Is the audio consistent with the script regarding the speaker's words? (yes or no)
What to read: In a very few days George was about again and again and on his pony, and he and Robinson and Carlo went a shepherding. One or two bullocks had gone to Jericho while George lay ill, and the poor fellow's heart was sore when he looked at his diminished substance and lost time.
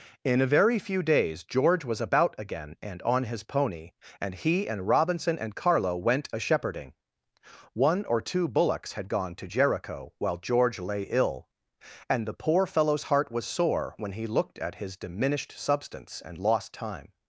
no